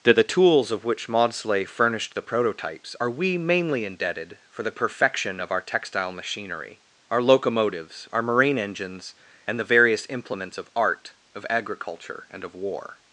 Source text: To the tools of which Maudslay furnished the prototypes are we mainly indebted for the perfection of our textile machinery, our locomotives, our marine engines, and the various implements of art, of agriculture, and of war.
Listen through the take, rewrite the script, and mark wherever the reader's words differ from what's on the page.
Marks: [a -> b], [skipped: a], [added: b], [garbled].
To the tools of which Maudslay furnished the prototypes are we mainly indebted for the perfection of our textile machinery, our locomotives, our marine engines, and the various implements of art, of agriculture, and of war.